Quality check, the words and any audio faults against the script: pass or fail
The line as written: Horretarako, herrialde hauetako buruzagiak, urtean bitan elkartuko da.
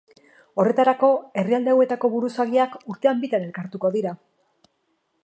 fail